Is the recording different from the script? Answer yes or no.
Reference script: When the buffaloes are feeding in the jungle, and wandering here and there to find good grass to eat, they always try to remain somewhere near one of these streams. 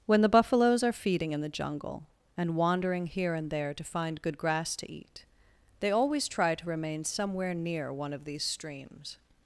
no